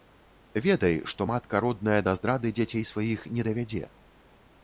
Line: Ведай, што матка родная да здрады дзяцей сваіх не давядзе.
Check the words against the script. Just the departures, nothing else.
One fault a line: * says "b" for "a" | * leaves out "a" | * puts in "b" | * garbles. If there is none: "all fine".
all fine